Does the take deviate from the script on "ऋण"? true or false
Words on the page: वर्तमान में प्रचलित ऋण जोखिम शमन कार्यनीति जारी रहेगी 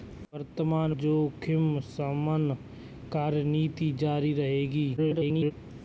true